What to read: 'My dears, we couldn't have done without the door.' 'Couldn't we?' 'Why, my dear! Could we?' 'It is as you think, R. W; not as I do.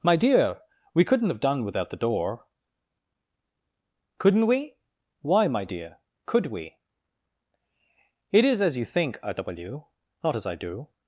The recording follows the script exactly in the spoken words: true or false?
false